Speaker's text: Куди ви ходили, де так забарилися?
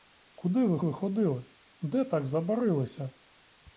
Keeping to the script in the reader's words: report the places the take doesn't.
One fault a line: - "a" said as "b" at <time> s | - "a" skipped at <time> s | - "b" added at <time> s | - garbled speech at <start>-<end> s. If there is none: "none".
- "ви" added at 0.8 s